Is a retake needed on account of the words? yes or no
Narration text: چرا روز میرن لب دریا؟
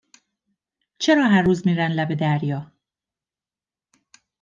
yes